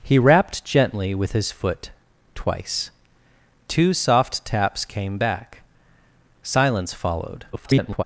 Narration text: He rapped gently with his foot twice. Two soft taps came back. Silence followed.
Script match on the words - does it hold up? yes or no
no